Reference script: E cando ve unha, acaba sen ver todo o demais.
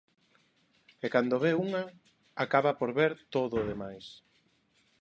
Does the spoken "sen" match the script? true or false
false